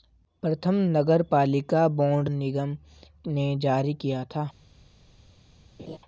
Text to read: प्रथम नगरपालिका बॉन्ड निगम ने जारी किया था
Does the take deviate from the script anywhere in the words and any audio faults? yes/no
yes